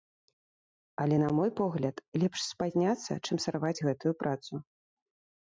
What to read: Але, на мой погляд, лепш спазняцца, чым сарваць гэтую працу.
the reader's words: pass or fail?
pass